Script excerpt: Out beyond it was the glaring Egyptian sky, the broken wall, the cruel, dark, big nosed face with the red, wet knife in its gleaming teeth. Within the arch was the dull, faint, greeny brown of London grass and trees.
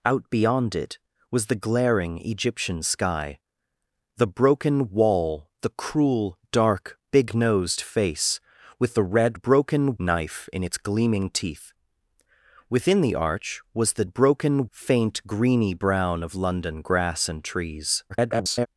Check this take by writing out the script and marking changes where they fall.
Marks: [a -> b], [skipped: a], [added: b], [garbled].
Out beyond it was the glaring Egyptian sky, the broken wall, the cruel, dark, big nosed face with the red, [wet -> broken] knife in its gleaming teeth. Within the arch was the [dull, -> broken] faint, greeny brown of London grass and trees. [garbled]